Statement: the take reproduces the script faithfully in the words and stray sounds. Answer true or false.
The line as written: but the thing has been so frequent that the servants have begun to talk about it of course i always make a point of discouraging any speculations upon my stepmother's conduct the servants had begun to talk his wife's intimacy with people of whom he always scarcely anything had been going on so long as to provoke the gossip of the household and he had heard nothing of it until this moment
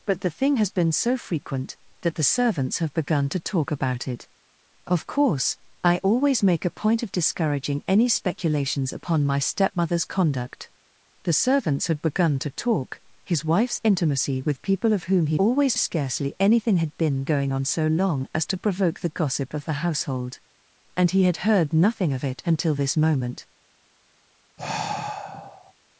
false